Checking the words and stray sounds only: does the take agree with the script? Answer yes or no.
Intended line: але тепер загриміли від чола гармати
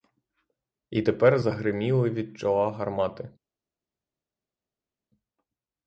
no